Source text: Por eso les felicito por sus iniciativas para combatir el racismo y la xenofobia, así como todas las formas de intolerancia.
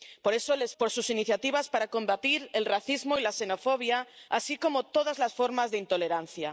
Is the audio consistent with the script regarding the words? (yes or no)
no